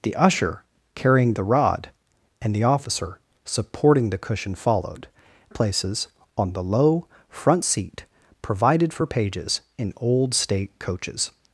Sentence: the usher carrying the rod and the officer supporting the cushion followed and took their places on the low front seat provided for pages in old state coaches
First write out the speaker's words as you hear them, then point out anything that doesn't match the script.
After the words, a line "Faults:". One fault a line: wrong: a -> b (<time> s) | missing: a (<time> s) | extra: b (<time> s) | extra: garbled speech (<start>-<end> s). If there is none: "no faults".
the usher carrying the rod and the officer supporting the cushion followed places on the low front seat provided for pages in old state coaches
Faults:
missing: and took their (5.1 s)